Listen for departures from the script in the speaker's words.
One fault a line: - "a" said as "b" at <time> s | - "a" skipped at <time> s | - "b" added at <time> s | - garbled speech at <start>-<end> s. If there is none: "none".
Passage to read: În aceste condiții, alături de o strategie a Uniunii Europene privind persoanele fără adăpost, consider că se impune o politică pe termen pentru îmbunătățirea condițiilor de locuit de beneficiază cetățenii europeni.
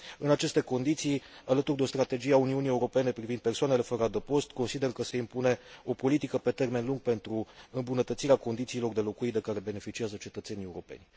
- "lung" added at 6.8 s
- "care" added at 9.4 s